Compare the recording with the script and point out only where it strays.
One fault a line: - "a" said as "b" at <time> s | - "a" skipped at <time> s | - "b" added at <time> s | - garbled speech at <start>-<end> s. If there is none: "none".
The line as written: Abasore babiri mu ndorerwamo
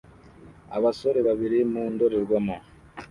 none